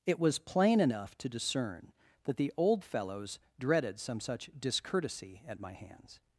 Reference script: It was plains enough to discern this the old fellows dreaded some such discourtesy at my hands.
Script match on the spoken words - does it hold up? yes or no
no